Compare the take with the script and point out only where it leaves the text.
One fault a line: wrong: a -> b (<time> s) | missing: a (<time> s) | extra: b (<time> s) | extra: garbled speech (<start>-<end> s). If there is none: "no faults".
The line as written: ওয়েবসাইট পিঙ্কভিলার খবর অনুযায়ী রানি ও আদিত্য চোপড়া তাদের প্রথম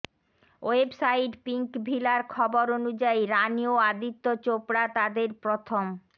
no faults